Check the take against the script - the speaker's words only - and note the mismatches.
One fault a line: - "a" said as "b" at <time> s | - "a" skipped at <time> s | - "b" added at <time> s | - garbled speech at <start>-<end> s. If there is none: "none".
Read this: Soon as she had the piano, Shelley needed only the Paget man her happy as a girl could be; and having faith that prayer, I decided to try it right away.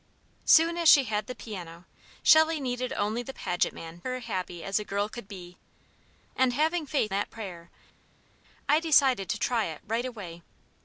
none